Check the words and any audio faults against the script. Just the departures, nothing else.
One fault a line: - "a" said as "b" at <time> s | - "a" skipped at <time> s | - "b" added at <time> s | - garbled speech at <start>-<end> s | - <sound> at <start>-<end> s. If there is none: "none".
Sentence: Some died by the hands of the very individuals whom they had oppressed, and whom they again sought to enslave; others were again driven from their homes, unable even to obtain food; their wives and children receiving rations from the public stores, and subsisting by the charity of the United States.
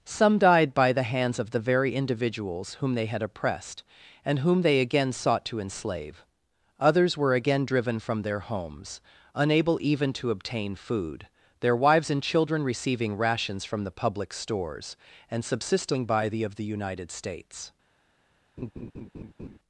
- "charity" skipped at 16.4 s
- laugh at 18.6-19.6 s